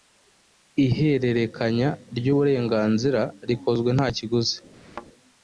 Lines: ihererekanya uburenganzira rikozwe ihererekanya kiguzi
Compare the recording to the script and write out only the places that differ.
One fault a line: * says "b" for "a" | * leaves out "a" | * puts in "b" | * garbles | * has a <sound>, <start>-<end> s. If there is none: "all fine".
* puts in "ry"
* says "nta" for "ihererekanya"
* has a thud, 4.7-5.1 s